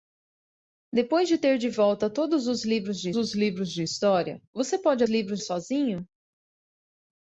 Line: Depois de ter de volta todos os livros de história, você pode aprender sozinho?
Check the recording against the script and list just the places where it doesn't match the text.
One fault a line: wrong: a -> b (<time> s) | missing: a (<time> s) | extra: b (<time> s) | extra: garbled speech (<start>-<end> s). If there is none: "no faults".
extra: os livros de (3.2 s)
wrong: aprender -> livros (5.1 s)